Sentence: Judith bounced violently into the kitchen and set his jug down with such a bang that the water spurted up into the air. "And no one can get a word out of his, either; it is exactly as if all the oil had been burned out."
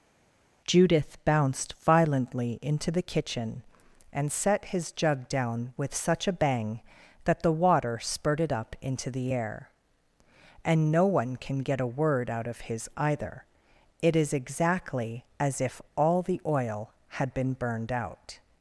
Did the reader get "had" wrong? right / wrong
right